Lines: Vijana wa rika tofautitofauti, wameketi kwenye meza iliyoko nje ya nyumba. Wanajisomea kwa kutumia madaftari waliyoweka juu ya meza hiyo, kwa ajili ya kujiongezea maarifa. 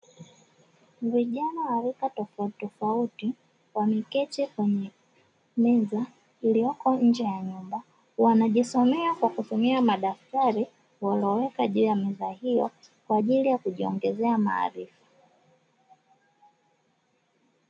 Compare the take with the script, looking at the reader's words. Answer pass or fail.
pass